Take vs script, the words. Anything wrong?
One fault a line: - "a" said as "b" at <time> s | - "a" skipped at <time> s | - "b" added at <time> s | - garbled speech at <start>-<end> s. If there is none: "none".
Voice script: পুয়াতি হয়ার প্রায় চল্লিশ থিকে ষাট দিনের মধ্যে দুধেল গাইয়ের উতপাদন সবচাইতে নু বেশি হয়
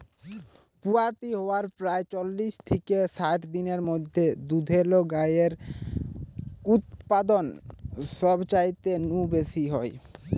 none